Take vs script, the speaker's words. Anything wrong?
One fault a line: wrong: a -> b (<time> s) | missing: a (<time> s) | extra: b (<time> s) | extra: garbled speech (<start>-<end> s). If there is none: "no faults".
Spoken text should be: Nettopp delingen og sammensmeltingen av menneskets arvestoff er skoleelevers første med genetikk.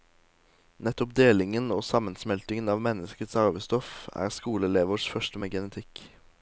no faults